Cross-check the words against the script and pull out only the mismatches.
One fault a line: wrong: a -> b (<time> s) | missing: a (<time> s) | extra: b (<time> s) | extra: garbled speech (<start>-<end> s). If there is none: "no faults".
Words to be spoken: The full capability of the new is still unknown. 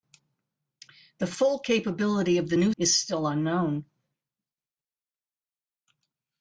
no faults